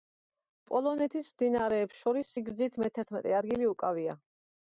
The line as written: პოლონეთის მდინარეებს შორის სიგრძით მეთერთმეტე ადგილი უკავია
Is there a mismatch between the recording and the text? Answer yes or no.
no